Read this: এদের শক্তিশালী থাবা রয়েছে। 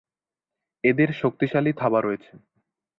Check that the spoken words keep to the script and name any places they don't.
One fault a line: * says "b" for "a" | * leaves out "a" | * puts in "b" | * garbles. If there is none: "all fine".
all fine